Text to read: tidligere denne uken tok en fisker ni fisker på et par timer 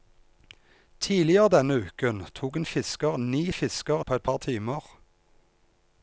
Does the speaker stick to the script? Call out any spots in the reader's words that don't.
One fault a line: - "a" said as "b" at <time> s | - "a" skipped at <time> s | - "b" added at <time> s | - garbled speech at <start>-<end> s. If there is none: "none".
none